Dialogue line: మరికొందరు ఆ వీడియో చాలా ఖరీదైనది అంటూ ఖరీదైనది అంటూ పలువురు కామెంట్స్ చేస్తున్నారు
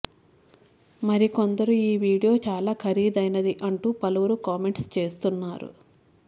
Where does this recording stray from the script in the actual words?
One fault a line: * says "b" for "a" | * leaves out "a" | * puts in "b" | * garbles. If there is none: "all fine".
* says "ఈ" for "ఆ"
* leaves out "ఖరీదైనది అంటూ"